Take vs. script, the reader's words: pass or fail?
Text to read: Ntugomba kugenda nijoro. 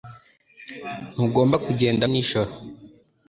pass